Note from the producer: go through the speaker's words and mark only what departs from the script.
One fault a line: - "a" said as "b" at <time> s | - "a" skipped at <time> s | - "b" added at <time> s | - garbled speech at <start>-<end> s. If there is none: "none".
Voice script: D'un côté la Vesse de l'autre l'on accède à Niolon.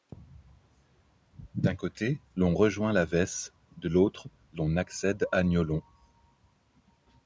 - "l'on rejoint" added at 2.4 s